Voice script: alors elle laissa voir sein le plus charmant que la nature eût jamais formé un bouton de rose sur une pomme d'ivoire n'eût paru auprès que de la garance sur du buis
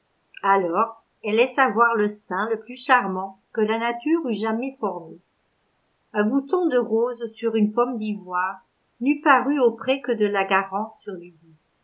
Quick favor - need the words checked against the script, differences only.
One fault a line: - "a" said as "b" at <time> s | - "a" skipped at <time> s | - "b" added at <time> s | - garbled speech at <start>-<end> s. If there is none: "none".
- "le" added at 1.9 s